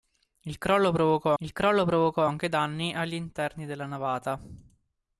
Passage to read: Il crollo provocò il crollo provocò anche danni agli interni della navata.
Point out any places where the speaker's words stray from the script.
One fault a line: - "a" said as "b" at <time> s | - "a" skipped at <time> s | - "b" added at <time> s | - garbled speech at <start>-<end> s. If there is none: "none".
none